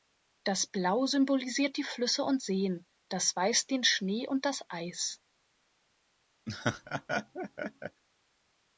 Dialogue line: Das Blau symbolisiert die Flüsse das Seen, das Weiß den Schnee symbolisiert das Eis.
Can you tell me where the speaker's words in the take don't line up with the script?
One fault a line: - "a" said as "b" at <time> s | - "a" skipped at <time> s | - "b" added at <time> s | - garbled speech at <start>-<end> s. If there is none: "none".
- "das" said as "und" at 2.2 s
- "symbolisiert" said as "und" at 4.3 s